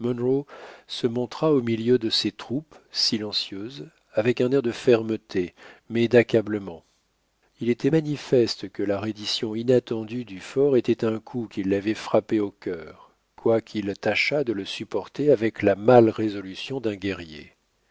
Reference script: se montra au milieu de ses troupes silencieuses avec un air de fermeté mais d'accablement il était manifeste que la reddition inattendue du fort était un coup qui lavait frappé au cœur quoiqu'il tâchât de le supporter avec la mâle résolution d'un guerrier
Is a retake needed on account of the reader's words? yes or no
no